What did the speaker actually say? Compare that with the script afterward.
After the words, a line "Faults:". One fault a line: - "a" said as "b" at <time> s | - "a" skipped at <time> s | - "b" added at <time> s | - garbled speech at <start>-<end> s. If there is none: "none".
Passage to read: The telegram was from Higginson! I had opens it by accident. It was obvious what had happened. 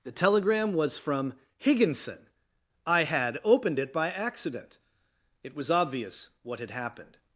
The telegram was from Higginson! I had opened it by accident. It was obvious what had happened.
Faults:
- "opens" said as "opened" at 3.4 s